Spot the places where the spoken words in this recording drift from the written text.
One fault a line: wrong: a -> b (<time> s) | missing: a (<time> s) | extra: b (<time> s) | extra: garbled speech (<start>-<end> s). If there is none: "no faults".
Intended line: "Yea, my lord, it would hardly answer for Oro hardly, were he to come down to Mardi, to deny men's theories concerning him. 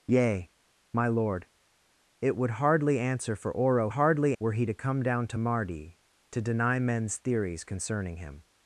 no faults